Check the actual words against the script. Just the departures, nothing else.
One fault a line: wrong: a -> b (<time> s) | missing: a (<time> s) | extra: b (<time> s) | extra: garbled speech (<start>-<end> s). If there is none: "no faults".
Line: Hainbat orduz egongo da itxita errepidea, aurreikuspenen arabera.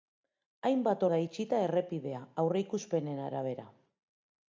missing: orduz egongo (1.1 s)